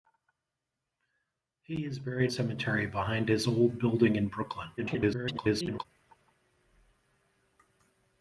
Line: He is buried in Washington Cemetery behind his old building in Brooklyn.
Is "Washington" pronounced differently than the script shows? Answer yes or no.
yes